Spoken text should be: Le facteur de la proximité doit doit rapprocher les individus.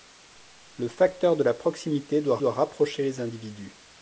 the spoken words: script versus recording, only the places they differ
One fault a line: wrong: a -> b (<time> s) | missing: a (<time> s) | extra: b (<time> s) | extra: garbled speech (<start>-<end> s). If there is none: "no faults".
no faults